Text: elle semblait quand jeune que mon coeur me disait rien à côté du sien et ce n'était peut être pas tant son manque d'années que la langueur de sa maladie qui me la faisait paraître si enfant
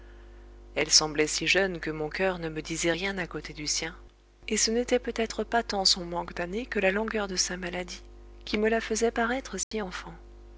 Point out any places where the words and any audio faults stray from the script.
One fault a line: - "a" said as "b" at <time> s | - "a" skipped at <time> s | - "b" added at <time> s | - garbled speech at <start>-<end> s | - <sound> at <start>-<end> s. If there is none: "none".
- "quand" said as "si" at 1.3 s
- "ne" added at 2.4 s
- dropout at 9.6-9.7 s